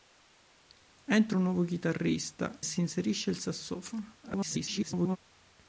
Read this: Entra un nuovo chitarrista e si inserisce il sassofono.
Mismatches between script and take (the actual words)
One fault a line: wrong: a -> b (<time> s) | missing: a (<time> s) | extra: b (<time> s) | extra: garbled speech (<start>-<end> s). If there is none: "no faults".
missing: e (2.6 s)
extra: garbled speech (4.2-5.2 s)